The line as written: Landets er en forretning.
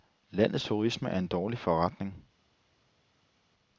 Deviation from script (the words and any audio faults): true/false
true